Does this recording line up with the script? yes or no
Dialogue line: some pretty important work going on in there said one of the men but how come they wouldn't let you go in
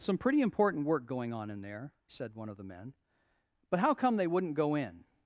no